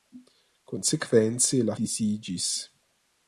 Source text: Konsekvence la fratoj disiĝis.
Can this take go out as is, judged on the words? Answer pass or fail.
fail